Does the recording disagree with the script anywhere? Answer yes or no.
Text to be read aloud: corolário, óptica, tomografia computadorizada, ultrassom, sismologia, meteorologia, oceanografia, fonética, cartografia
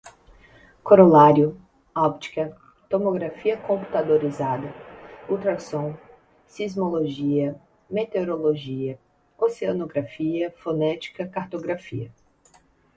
no